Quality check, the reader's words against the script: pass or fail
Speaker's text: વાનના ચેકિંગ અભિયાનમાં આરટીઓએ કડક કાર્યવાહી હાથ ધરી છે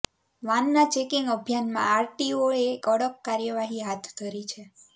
pass